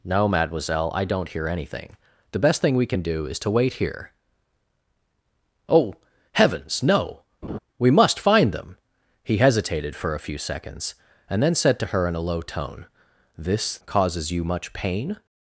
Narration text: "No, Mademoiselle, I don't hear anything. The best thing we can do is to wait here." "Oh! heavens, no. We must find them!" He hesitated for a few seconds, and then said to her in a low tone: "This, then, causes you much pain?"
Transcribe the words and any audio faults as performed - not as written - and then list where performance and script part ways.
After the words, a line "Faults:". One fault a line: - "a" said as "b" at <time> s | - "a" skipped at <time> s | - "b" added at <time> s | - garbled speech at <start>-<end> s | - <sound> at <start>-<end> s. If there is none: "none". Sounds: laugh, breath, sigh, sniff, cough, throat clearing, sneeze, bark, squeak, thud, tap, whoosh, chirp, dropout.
"No, Mademoiselle, I don't hear anything. The best thing we can do is to wait here." "Oh! heavens, no. We must find them!" He hesitated for a few seconds, and then said to her in a low tone: "This, causes you much pain?"
Faults:
- laugh at 7.4-7.6 s
- "then" skipped at 13.8 s